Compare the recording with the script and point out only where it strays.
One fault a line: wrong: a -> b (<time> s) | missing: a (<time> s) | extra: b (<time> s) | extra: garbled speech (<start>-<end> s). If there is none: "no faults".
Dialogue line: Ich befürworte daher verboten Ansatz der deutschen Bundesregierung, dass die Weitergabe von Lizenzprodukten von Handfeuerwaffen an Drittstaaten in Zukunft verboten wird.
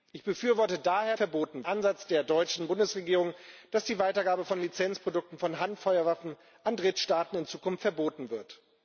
no faults